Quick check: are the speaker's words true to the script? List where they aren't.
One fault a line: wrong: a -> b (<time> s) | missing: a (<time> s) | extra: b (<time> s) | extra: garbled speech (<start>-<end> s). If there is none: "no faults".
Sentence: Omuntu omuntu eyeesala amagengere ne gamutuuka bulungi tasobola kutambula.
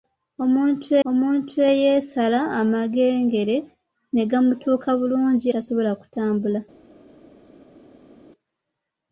no faults